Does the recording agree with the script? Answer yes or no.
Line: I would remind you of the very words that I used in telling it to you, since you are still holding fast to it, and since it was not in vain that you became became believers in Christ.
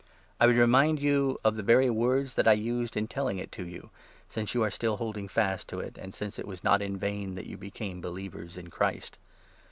no